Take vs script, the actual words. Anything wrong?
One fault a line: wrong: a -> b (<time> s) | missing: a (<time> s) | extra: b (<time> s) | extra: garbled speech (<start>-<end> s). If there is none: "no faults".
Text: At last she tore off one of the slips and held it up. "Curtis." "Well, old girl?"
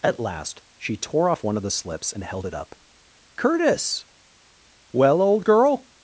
no faults